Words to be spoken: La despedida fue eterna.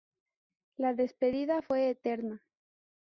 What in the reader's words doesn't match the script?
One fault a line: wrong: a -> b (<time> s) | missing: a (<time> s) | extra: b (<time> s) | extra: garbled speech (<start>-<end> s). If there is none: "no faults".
no faults